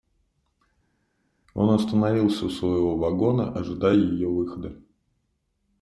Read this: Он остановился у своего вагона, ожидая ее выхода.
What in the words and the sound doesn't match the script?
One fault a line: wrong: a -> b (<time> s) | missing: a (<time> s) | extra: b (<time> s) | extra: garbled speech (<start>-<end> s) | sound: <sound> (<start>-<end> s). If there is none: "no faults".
no faults